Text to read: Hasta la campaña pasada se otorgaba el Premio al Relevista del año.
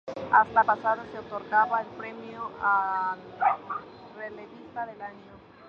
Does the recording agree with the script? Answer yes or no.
no